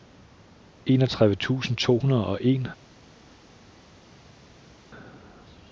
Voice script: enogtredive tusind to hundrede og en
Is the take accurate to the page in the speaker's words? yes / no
yes